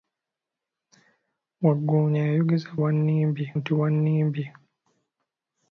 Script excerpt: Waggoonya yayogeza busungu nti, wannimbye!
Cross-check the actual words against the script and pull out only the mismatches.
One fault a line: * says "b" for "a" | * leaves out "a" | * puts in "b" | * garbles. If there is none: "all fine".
* says "wannimbye" for "busungu"